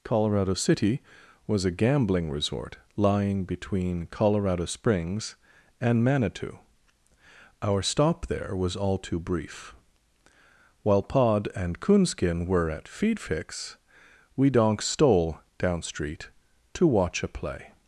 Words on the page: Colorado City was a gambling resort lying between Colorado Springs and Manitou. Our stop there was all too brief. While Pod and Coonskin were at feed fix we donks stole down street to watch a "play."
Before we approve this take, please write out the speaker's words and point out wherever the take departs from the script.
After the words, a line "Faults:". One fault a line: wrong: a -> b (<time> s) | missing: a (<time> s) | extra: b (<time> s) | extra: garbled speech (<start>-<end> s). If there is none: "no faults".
Colorado City was a gambling resort lying between Colorado Springs and Manitou. Our stop there was all too brief. While Pod and Coonskin were at feed fix we donks stole down street to watch a "play."
Faults:
no faults